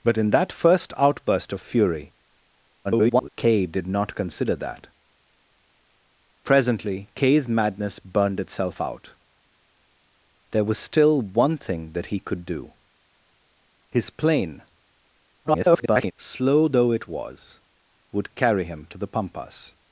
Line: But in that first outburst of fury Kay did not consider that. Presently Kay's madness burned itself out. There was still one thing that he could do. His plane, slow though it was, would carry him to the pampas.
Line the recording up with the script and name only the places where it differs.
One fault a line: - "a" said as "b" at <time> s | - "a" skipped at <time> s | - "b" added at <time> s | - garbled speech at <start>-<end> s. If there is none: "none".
- garbled speech at 2.8-3.3 s
- garbled speech at 15.4-16.1 s